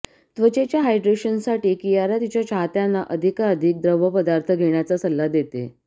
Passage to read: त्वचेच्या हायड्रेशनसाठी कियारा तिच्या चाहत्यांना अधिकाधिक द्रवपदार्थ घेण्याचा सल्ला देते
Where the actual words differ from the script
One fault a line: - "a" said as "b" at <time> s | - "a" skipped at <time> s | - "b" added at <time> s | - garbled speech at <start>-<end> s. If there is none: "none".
none